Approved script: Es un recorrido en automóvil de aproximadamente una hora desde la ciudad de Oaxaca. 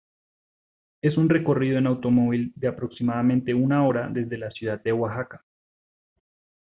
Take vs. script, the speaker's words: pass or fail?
pass